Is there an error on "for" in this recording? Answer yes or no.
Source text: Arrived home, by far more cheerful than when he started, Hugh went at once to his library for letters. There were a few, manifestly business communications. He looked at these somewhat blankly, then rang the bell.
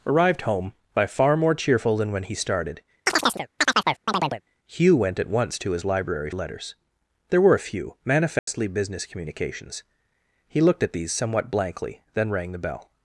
yes